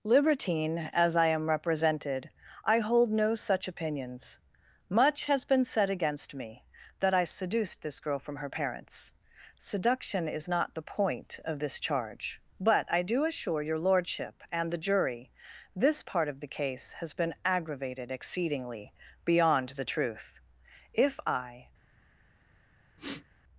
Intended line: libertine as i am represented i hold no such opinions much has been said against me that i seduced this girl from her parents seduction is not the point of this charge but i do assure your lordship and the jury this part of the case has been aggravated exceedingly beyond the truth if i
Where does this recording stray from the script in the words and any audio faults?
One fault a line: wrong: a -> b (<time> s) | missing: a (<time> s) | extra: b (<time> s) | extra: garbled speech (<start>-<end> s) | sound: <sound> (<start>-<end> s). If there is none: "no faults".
sound: sniff (23.0-23.2 s)